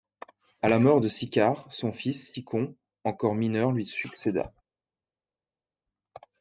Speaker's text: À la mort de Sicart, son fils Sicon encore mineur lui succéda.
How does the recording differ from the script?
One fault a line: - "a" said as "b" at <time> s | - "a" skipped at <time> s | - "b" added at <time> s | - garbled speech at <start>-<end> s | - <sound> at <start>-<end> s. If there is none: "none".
none